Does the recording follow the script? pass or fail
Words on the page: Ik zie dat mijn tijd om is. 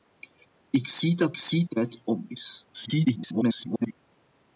fail